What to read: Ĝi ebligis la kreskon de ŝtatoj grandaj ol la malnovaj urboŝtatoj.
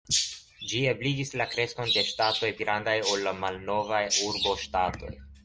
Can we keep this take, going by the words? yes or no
yes